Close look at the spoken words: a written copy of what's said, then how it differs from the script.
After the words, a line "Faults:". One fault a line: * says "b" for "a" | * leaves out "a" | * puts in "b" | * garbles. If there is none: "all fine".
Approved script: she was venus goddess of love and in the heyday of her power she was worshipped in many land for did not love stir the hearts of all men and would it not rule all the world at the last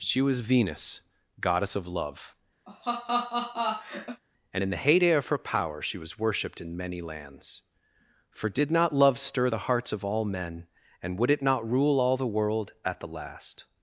she was venus goddess of love and in the heyday of her power she was worshipped in many lands for did not love stir the hearts of all men and would it not rule all the world at the last
Faults:
* says "lands" for "land"